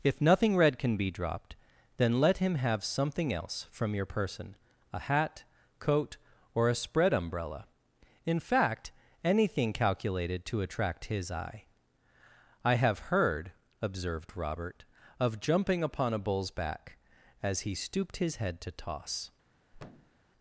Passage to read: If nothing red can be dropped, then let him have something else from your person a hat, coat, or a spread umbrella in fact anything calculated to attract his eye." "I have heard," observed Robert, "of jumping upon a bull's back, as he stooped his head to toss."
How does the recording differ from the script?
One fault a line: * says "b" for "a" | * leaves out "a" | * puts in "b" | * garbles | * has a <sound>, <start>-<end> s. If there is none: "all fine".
* has a thud, 19.7-20.2 s